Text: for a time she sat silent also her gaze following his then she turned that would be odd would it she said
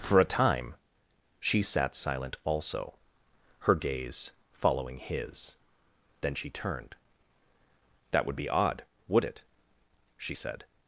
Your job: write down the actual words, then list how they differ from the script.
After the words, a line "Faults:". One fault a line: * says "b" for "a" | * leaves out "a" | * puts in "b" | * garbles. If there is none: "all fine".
for a time she sat silent also her gaze following his then she turned that would be odd would it she said
Faults:
all fine